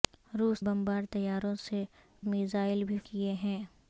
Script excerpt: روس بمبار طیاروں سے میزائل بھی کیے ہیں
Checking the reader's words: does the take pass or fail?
pass